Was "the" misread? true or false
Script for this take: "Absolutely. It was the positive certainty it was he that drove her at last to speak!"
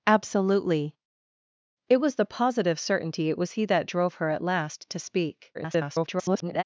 false